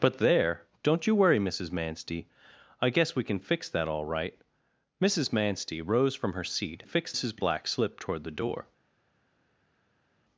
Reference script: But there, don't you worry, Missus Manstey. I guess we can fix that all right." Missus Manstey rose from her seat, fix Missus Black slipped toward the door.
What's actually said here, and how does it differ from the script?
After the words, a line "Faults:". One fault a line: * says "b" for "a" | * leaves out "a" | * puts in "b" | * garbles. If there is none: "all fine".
But there, don't you worry, Missus Manstey. I guess we can fix that all right." Missus Manstey rose from her seat, fix Missus Black slipped toward the door.
Faults:
all fine